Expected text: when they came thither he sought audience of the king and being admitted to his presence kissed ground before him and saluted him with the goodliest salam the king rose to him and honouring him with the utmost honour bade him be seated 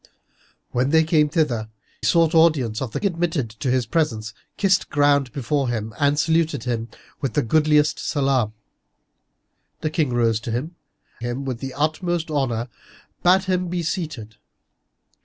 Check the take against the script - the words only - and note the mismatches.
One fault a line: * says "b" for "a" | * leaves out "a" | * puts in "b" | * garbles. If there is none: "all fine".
* leaves out "he"
* leaves out "king and being"
* leaves out "and honouring"